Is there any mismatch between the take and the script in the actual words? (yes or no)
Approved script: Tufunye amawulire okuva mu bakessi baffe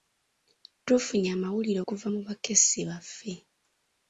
no